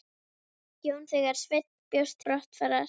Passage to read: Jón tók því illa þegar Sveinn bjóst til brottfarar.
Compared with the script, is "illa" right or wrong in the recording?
wrong